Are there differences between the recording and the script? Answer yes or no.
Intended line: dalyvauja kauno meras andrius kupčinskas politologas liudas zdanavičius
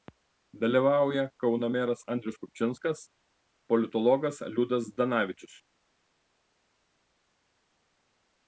no